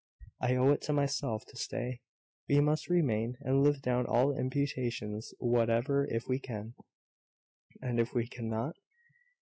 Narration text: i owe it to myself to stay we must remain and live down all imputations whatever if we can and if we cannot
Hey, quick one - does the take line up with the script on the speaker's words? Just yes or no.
yes